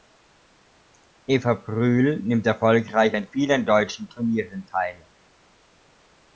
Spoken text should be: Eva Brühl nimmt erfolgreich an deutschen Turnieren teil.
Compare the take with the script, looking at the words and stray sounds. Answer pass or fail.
fail